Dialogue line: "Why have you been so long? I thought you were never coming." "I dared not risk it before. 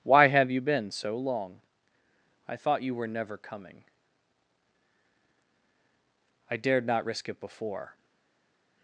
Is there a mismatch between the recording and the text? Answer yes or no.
no